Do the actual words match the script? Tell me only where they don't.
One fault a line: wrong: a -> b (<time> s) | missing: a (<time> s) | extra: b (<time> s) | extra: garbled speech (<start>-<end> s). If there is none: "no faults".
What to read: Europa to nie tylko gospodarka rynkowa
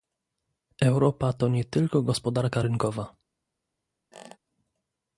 no faults